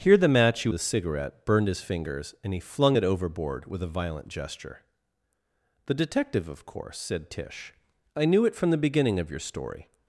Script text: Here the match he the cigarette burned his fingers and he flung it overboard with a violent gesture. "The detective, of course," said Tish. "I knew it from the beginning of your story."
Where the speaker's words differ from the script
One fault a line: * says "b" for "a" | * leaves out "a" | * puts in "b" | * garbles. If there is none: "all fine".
all fine